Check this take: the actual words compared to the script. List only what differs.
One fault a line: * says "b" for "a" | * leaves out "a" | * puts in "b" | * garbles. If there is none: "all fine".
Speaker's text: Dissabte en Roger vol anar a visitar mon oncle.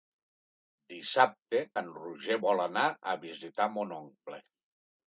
all fine